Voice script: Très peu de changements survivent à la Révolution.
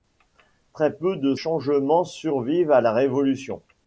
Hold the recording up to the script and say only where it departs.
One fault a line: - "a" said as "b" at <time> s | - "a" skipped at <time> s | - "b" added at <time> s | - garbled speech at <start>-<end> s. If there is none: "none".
none